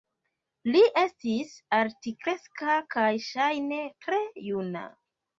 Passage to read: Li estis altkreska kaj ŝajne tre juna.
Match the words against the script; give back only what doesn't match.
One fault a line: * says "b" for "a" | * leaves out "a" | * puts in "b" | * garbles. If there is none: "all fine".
all fine